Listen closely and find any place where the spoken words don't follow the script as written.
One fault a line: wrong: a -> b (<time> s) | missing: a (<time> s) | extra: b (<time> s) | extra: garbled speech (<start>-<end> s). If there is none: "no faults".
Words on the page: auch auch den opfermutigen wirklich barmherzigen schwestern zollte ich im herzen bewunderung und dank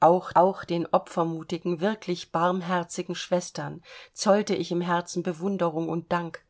no faults